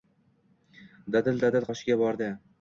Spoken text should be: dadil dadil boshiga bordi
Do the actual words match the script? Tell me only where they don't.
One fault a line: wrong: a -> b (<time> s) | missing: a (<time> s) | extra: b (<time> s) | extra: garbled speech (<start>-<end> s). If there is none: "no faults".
no faults